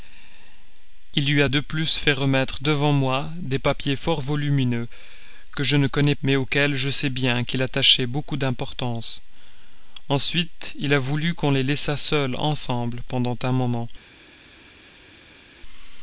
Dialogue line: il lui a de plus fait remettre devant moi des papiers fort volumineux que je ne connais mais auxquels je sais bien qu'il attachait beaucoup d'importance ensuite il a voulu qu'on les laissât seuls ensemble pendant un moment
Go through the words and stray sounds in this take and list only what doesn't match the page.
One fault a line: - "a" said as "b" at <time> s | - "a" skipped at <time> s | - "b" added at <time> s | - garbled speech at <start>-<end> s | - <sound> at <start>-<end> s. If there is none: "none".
none